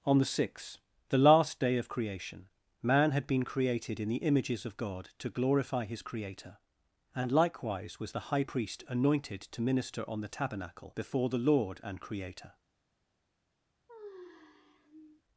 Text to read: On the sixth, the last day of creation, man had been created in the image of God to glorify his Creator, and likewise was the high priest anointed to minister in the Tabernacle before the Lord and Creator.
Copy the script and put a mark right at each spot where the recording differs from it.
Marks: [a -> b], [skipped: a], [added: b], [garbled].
On the sixth, the last day of creation, man had been created in the [image -> images] of God to glorify his Creator, and likewise was the high priest anointed to minister [in -> on] the Tabernacle before the Lord and Creator.